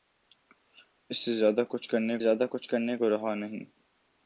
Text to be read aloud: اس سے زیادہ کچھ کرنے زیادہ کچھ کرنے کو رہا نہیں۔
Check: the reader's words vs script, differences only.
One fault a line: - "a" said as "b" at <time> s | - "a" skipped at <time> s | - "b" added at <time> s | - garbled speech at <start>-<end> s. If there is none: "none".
none